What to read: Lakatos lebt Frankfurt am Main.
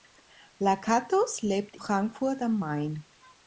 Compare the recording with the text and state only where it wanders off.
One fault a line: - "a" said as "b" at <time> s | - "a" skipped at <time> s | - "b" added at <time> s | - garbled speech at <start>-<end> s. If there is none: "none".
none